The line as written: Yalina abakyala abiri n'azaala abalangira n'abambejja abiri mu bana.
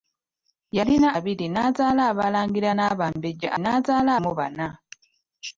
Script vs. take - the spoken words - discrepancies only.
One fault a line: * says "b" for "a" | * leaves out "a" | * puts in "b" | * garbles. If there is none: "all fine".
* leaves out "abakyala"
* says "n'azaala" for "abiri"